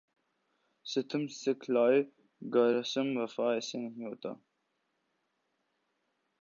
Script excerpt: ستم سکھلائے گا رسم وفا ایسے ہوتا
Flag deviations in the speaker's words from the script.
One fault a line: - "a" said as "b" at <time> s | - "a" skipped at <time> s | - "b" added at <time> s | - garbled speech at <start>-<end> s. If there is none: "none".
- "نہیں" added at 3.8 s